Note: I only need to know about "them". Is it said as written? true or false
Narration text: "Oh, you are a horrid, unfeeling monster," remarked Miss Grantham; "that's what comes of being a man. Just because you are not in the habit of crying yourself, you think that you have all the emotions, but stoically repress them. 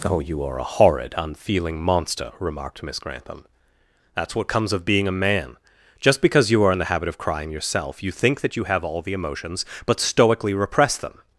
true